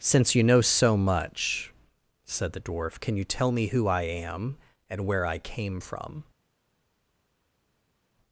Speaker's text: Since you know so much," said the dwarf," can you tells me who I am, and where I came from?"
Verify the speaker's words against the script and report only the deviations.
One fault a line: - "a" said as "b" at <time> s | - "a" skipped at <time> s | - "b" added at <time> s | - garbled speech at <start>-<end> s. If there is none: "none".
- "tells" said as "tell" at 3.2 s